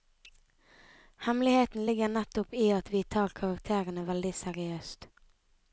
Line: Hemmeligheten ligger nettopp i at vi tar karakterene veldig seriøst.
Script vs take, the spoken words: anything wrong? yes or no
no